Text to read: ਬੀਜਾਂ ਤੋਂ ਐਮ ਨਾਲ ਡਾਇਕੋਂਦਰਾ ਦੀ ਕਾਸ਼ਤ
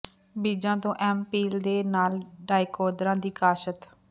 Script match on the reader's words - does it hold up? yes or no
no